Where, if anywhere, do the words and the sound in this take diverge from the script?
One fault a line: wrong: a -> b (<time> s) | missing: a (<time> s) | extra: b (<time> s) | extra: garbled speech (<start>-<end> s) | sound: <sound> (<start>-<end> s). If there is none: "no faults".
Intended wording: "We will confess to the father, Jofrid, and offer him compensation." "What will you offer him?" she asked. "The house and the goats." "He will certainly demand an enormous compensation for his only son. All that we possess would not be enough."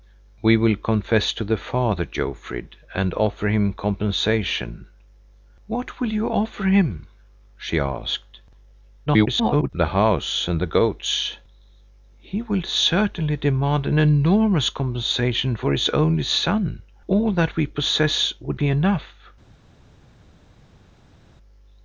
extra: garbled speech (9.1-9.7 s)
missing: not (18.6 s)